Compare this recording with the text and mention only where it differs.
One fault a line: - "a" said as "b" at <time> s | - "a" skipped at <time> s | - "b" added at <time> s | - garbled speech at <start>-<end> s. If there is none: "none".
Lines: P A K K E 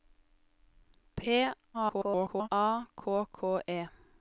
- garbled speech at 1.7-2.5 s